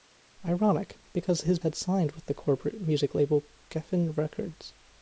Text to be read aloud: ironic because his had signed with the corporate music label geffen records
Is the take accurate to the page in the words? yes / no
yes